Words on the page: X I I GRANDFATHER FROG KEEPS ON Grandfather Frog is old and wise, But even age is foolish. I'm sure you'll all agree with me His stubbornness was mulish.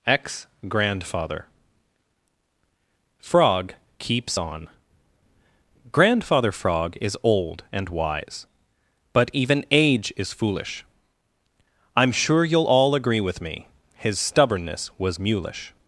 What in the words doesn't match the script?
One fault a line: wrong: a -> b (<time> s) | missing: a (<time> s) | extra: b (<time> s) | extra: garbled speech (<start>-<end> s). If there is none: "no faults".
wrong: X I I -> Ex (0.1 s)